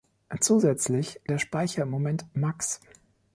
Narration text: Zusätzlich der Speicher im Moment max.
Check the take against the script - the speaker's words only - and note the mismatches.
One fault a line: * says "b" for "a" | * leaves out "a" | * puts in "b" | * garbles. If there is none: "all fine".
all fine